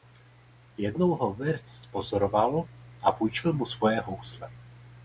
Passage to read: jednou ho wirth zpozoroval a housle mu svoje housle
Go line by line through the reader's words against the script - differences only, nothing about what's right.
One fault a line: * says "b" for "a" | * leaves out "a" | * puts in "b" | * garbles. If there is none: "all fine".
* says "půjčil" for "housle"